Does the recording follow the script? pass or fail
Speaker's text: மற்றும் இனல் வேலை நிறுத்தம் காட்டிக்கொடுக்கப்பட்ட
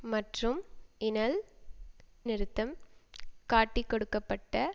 fail